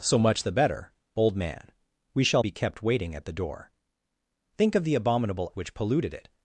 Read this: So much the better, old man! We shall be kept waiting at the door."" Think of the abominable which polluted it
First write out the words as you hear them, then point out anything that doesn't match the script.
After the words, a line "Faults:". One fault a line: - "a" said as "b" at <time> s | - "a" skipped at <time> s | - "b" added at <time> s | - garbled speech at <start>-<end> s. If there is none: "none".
So much the better, old man! We shall be kept waiting at the door."" Think of the abominable which polluted it
Faults:
none